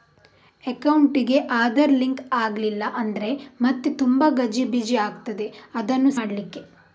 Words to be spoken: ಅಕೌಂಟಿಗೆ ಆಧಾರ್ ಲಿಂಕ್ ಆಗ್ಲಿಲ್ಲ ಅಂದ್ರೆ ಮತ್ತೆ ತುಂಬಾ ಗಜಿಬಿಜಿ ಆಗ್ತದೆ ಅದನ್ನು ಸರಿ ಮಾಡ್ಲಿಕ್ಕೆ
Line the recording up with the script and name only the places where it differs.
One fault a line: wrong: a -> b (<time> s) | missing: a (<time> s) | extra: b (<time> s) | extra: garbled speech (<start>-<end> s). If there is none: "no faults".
missing: ಸರಿ (6.1 s)